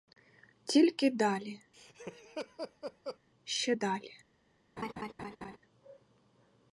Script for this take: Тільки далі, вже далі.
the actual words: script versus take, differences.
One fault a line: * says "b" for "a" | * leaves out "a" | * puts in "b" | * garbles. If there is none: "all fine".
* says "ще" for "вже"